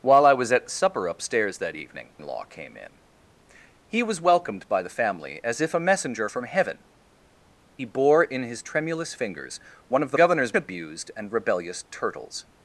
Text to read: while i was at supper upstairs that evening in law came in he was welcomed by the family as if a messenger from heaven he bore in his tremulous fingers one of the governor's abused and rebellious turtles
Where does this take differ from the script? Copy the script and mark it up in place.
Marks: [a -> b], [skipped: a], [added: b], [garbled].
while i was at supper upstairs that evening in law came in he was welcomed by the family as if a messenger from heaven he bore in his tremulous fingers one of the governor's abused and rebellious turtles